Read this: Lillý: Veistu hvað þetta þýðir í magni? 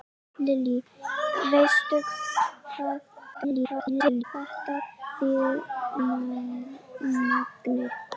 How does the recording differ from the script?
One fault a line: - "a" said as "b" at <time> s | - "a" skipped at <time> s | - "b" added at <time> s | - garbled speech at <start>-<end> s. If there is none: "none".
- garbled speech at 3.3-4.2 s
- "í" skipped at 5.6 s